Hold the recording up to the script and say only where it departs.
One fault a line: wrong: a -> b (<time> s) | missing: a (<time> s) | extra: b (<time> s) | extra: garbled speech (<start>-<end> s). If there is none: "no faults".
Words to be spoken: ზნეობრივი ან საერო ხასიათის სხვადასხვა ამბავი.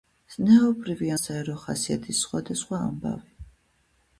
missing: ან (1.1 s)